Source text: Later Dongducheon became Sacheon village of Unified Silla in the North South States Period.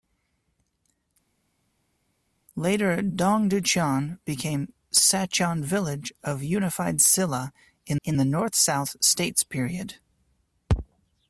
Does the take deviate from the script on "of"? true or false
false